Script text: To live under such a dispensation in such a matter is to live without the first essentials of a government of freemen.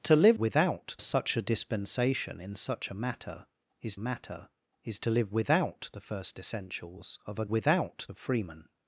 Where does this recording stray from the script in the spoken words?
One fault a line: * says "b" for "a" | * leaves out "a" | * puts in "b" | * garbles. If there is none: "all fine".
* says "without" for "under"
* puts in "matter is"
* says "without" for "government"